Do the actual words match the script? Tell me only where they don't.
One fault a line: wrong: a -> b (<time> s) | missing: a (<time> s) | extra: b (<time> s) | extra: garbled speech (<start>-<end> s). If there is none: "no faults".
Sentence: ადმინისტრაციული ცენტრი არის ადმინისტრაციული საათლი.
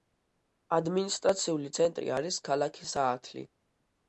wrong: ადმინისტრაციული -> ქალაქი (2.5 s)